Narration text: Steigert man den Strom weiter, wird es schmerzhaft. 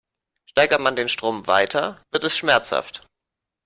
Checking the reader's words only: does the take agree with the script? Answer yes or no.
yes